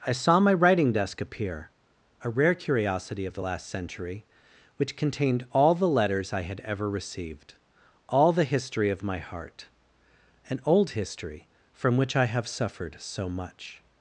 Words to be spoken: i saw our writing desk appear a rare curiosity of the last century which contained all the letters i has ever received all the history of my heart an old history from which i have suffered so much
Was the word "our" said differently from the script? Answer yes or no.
yes